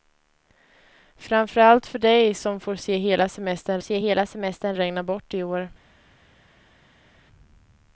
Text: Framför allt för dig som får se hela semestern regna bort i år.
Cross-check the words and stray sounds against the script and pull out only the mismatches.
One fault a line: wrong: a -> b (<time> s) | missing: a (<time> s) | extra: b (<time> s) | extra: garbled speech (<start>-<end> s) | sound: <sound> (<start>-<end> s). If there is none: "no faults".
extra: se hela semestern (3.8 s)